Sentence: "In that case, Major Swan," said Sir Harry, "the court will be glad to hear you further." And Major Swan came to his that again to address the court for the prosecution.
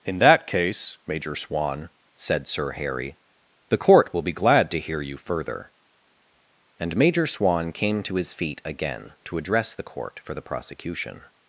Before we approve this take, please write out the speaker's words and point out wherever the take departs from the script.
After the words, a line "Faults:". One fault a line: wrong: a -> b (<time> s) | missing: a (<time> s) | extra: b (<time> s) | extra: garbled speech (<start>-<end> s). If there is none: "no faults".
"In that case, Major Swan," said Sir Harry, "the court will be glad to hear you further." And Major Swan came to his feet again to address the court for the prosecution.
Faults:
wrong: that -> feet (8.3 s)